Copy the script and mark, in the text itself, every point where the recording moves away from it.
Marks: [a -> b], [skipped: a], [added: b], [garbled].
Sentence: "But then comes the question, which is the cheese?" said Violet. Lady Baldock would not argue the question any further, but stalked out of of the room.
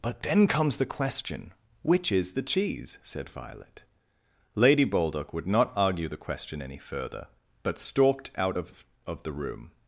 "But then comes the question, which is the cheese?" said Violet. Lady Baldock would not argue the question any further, but stalked out of of the room.